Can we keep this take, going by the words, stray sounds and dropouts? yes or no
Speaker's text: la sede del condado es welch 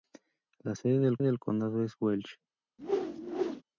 no